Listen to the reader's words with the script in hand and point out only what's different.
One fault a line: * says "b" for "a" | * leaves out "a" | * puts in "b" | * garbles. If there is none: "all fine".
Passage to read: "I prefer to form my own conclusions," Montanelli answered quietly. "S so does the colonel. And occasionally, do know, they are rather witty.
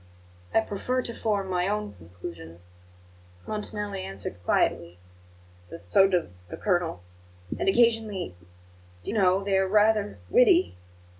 all fine